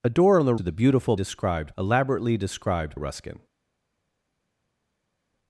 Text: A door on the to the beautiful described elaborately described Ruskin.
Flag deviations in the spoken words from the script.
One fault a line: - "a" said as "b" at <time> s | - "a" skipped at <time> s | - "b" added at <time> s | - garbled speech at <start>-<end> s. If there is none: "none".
none